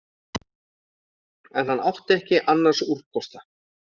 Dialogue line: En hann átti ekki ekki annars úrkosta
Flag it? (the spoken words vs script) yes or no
yes